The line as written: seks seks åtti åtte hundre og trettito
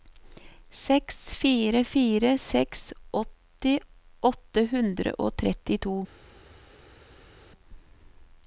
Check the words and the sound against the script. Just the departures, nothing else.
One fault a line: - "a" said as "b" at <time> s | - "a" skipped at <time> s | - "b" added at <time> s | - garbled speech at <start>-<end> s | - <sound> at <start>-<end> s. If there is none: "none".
- "fire fire" added at 1.4 s